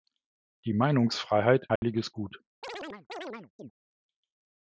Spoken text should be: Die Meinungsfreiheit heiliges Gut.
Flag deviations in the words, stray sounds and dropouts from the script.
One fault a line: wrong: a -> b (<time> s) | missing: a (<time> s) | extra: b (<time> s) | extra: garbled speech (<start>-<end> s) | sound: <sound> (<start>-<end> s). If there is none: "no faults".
sound: dropout (1.8-1.8 s)
sound: chirp (2.6-3.7 s)